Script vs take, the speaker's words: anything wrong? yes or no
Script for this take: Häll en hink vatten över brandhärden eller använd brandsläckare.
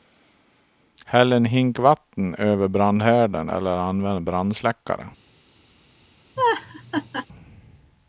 no